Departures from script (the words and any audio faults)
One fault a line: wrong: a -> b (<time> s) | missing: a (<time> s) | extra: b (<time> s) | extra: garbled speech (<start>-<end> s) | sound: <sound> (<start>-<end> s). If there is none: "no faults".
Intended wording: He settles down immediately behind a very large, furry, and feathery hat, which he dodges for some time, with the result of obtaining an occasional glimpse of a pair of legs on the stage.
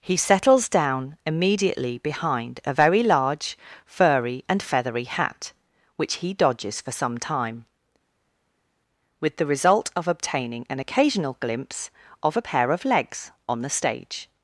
no faults